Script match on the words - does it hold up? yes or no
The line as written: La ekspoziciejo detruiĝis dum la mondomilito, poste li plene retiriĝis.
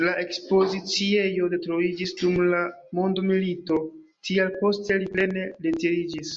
no